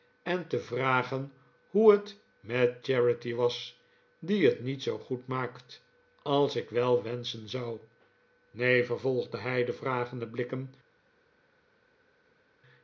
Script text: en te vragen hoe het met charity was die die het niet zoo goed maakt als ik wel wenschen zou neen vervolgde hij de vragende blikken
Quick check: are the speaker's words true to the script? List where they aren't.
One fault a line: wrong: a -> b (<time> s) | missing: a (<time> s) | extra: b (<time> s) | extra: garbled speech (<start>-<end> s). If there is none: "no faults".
missing: die (4.5 s)